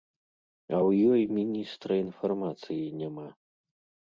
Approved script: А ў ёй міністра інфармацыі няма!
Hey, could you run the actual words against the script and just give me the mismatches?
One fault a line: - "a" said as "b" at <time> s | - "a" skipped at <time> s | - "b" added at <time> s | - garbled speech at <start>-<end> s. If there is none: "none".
none